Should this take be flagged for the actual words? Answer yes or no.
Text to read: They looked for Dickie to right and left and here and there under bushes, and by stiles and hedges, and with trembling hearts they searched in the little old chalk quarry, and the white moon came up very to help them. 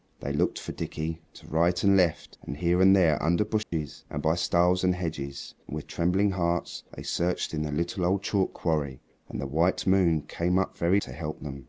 no